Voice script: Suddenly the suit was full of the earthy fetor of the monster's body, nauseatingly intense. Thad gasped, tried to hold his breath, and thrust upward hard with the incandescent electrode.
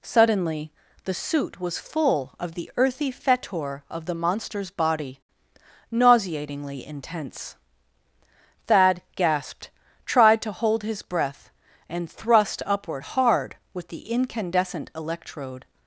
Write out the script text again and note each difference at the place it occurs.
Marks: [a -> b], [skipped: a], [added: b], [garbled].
Suddenly the suit was full of the earthy fetor of the monster's body, nauseatingly intense. Thad gasped, tried to hold his breath, and thrust upward hard with the incandescent electrode.